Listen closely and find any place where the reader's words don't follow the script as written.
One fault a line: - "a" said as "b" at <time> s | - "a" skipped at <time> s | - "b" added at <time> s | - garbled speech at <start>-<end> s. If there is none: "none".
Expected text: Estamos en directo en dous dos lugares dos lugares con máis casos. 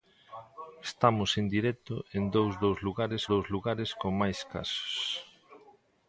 none